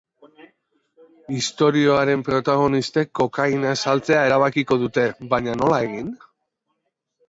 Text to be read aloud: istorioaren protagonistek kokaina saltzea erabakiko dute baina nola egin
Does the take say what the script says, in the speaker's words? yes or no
yes